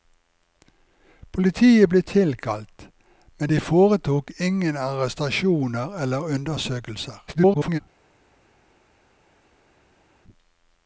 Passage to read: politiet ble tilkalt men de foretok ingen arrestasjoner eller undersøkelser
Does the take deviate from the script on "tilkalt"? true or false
false